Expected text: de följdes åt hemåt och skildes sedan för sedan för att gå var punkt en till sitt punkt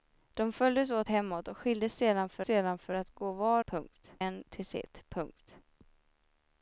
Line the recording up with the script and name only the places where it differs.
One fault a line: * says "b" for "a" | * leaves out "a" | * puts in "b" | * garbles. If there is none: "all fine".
all fine